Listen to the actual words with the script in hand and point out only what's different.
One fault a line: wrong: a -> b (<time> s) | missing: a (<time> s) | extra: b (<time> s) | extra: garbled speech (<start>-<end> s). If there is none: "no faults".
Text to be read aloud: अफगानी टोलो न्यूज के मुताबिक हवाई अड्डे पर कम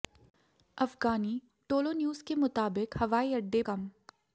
missing: पर (3.6 s)